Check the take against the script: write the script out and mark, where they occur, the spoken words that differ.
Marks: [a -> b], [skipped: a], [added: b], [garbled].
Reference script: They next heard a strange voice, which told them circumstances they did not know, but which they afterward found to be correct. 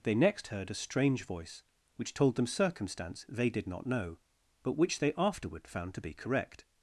They next heard a strange voice, which told them [circumstances -> circumstance] they did not know, but which they afterward found to be correct.